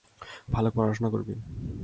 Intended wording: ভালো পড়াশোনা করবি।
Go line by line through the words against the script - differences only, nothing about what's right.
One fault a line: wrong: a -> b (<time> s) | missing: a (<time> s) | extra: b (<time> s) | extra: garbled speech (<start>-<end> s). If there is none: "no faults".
no faults